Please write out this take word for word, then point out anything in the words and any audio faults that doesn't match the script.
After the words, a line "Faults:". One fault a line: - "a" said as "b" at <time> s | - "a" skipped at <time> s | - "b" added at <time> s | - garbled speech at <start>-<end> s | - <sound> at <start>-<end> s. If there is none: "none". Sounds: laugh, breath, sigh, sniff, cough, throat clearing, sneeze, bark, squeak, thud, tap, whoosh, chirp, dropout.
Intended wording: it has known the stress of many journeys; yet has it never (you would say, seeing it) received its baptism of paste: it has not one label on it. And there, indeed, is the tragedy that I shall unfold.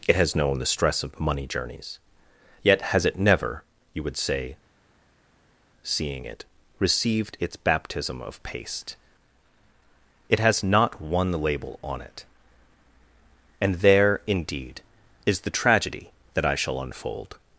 it has known the stress of money journeys; yet has it never (you would say, seeing it) received its baptism of paste: it has not one label on it. And there, indeed, is the tragedy that I shall unfold.
Faults:
- "many" said as "money" at 1.2 s